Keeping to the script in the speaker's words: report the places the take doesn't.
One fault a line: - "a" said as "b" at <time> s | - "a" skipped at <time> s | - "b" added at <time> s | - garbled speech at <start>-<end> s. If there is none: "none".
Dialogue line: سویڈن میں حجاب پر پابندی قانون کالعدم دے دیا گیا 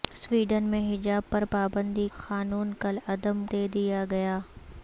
none